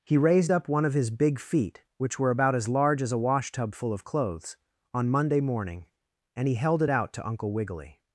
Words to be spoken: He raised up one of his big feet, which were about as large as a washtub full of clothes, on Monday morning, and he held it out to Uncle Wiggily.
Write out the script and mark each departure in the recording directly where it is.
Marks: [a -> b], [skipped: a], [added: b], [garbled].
He raised up one of his big feet, which were about as large as a washtub full of clothes, on Monday morning, and he held it out to Uncle Wiggily.